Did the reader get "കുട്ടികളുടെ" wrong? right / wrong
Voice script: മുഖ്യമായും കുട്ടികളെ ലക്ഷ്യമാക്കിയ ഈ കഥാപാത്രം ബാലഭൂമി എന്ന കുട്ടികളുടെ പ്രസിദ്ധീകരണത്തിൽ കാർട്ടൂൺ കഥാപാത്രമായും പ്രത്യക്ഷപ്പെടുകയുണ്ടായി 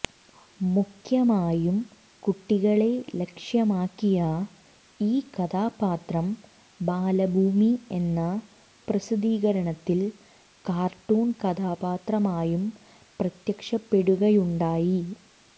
wrong